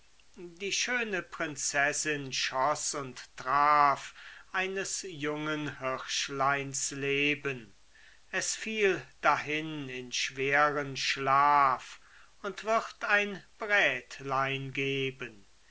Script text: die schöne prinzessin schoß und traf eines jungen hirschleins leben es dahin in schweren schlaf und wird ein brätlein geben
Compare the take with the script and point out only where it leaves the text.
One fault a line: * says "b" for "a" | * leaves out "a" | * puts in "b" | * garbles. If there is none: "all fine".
* puts in "fiel"